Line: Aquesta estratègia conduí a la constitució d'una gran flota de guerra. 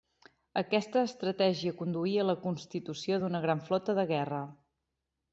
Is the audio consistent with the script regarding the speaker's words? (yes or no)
yes